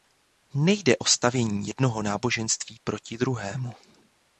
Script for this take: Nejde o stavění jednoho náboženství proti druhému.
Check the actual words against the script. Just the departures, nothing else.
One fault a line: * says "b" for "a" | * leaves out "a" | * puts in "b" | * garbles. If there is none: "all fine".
all fine